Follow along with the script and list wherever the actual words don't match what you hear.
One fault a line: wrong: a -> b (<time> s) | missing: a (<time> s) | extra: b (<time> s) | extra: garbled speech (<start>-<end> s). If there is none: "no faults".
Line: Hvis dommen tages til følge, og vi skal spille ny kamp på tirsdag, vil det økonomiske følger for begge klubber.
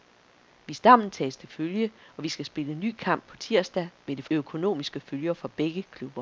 no faults